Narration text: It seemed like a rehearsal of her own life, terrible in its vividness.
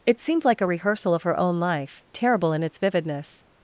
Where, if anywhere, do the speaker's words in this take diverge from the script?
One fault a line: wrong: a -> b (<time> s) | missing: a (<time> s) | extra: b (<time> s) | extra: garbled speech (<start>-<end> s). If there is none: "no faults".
no faults